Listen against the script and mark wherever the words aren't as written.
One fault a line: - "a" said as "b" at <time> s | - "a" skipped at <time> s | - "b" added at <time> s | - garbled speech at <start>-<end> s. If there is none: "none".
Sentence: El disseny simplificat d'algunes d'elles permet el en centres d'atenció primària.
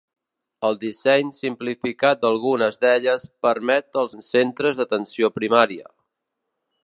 none